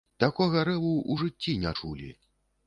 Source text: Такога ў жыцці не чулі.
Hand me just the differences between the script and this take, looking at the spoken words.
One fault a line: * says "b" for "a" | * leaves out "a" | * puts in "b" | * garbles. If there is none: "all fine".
* puts in "рэву"